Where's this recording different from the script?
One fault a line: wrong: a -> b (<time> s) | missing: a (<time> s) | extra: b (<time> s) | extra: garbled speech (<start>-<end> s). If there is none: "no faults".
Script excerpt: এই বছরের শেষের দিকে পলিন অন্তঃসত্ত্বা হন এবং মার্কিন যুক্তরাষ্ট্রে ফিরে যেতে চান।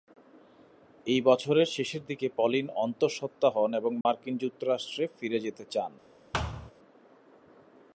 no faults